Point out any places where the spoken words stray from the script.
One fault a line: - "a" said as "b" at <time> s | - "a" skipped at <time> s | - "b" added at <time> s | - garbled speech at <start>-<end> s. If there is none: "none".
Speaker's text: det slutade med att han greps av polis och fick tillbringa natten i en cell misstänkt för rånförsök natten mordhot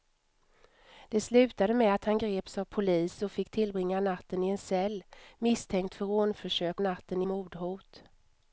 none